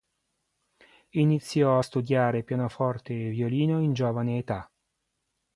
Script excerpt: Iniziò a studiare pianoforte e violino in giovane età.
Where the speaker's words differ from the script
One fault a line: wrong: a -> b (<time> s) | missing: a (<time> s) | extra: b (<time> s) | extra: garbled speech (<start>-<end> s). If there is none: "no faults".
no faults